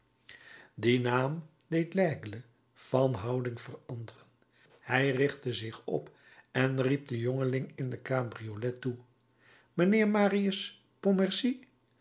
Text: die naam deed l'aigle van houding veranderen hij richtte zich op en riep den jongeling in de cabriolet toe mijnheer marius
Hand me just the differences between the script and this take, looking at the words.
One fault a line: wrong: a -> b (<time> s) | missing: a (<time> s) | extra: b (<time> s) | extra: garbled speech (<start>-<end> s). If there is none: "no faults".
no faults